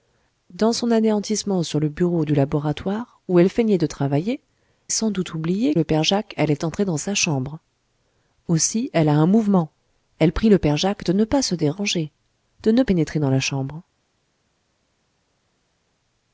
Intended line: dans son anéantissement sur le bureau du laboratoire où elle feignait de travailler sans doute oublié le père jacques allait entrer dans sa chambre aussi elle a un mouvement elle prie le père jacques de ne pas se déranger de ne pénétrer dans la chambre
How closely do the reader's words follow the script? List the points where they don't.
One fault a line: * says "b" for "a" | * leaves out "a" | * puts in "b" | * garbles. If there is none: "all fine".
all fine